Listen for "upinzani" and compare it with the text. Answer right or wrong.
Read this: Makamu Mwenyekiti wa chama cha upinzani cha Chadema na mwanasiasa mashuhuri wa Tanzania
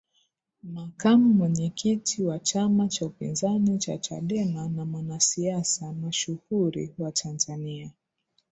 right